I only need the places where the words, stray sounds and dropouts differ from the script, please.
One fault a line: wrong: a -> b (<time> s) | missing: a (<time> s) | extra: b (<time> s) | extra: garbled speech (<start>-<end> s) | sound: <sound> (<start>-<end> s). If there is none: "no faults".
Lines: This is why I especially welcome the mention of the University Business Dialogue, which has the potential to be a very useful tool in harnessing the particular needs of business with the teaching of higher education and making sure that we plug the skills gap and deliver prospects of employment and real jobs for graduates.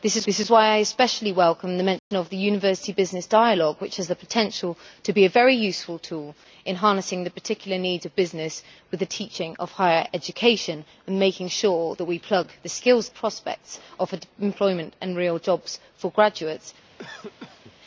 extra: this is (0.3 s)
sound: dropout (2.0-2.1 s)
missing: gap and deliver (13.1 s)
sound: cough (17.0-17.8 s)